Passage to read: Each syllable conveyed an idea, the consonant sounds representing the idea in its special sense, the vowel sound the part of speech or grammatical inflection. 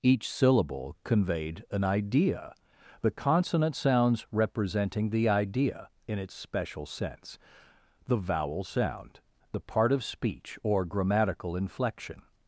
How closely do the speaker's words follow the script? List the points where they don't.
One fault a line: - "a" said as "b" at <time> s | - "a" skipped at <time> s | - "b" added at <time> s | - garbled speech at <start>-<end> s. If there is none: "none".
none